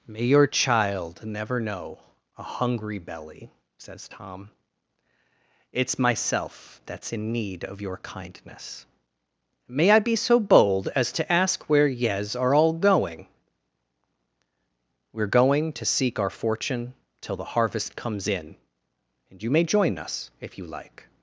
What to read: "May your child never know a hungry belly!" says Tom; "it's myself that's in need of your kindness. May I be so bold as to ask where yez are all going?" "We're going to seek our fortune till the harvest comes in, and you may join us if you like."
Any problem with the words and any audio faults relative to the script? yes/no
no